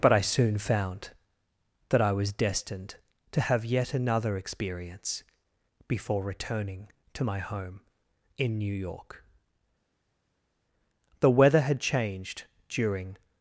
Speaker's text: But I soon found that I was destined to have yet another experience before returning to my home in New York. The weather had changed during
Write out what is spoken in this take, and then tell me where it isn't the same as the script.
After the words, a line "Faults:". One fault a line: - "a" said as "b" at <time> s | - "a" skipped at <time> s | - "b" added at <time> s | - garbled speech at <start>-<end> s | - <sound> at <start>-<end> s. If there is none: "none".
But I soon found that I was destined to have yet another experience before returning to my home in New York. The weather had changed during
Faults:
none